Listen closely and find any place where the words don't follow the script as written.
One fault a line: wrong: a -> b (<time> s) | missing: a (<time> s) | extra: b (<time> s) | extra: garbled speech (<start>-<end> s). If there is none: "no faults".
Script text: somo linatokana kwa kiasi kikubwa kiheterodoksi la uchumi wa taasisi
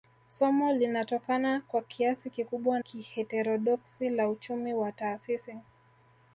no faults